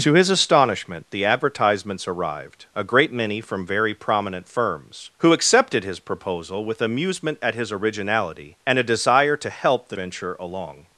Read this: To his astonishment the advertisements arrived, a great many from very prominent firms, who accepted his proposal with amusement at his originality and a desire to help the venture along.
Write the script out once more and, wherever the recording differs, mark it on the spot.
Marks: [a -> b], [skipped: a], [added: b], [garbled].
To his astonishment the advertisements arrived, a great many from very prominent firms, who accepted his proposal with amusement at his originality and a desire to help the venture along.